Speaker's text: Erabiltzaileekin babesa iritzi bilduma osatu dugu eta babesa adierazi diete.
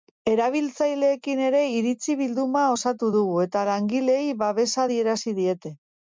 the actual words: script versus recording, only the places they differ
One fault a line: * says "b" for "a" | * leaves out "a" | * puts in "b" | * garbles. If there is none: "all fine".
* says "ere" for "babesa"
* puts in "langileei"